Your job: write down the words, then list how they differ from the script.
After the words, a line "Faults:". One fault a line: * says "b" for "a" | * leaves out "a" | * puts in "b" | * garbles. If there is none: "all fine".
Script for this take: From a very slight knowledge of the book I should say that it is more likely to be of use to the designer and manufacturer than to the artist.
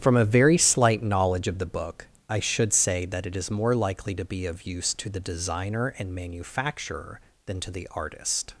From a very slight knowledge of the book I should say that it is more likely to be of use to the designer and manufacturer than to the artist.
Faults:
all fine